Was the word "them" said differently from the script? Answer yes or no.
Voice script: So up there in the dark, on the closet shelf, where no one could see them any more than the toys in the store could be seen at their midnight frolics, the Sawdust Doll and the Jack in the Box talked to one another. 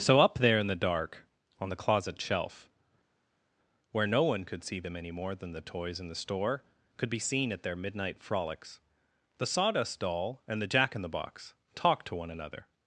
no